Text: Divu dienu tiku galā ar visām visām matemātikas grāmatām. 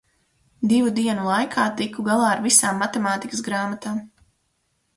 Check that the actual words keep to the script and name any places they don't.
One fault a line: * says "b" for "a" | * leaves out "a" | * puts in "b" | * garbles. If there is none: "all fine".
* puts in "laikā"
* leaves out "visām"